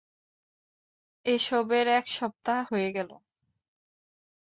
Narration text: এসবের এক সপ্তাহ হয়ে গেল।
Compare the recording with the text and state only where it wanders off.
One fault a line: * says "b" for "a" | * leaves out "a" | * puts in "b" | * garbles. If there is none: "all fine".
all fine